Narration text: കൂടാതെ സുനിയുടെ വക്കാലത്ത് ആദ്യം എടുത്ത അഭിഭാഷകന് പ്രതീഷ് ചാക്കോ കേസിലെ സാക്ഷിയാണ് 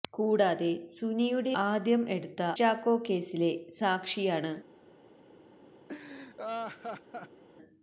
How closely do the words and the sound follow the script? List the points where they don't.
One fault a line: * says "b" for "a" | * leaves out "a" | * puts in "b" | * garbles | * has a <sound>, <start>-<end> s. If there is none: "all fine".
* leaves out "വക്കാലത്ത്"
* leaves out "അഭിഭാഷകന് പ്രതീഷ്"
* has a laugh, 5.9-7.4 s